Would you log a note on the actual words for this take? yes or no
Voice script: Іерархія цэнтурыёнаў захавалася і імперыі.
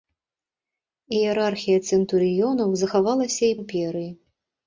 no